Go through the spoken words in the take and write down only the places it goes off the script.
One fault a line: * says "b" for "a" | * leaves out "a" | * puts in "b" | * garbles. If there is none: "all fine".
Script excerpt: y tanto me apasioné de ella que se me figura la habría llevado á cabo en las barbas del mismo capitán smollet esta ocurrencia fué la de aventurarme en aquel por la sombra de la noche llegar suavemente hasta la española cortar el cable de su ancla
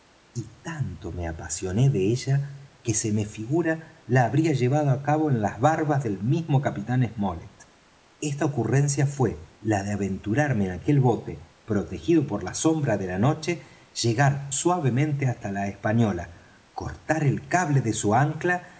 * puts in "bote protegido"